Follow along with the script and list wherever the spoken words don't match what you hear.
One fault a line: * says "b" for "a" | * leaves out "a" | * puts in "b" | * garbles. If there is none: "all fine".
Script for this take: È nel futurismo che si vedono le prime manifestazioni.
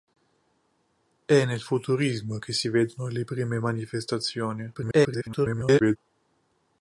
* garbles